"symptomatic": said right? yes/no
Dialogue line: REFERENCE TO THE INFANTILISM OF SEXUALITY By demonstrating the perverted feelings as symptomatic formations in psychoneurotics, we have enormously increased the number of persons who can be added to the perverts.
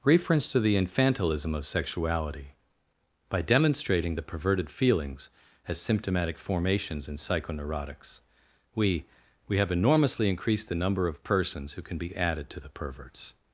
yes